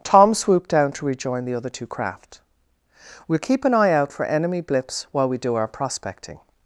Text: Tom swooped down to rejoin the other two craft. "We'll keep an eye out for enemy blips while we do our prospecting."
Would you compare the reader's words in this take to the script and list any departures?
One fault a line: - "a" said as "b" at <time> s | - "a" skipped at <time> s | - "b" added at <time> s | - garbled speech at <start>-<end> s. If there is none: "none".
none